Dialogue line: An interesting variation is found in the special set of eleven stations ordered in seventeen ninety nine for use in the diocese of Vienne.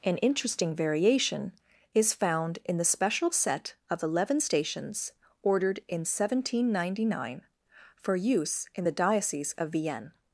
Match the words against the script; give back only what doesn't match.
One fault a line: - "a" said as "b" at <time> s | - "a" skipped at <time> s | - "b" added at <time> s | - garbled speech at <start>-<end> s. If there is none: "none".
none